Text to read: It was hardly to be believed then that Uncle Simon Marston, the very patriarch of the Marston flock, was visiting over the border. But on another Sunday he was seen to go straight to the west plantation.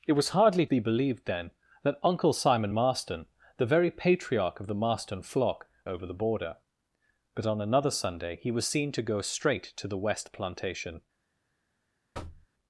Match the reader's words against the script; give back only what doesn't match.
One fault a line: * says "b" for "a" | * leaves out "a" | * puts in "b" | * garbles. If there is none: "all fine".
* leaves out "to"
* leaves out "was visiting"